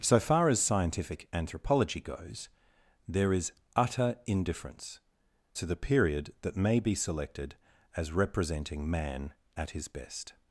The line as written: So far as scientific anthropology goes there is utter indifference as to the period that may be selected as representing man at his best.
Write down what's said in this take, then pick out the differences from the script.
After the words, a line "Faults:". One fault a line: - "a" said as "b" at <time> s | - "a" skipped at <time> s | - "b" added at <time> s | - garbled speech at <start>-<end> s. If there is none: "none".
So far as scientific anthropology goes there is utter indifference to the period that may be selected as representing man at his best.
Faults:
- "as" skipped at 5.0 s